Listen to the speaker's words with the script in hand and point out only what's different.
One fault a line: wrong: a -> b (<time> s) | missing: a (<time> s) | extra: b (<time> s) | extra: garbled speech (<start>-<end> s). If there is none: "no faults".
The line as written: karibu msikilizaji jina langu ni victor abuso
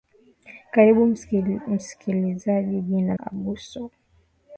missing: langu ni victor (3.1 s)